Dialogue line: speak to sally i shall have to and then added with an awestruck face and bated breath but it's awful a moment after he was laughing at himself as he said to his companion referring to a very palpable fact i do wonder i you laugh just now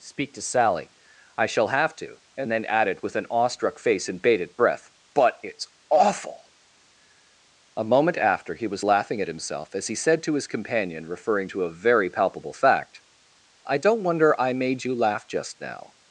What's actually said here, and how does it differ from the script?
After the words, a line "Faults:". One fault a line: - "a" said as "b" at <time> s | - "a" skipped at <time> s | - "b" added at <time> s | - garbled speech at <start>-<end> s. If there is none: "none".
speak to sally i shall have to and then added with an awestruck face and bated breath but it's awful a moment after he was laughing at himself as he said to his companion referring to a very palpable fact i don't wonder i made you laugh just now
Faults:
- "do" said as "don't" at 13.8 s
- "made" added at 14.5 s